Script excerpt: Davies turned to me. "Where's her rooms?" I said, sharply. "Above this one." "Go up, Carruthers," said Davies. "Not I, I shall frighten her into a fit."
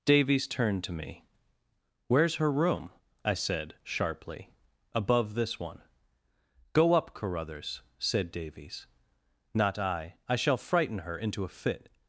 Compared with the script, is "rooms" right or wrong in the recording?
wrong